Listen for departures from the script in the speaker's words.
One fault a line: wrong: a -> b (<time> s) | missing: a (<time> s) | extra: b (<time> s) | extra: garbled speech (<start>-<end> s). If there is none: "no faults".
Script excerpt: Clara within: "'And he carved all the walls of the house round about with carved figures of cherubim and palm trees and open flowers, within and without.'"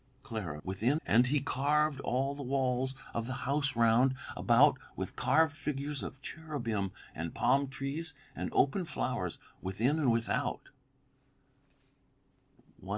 no faults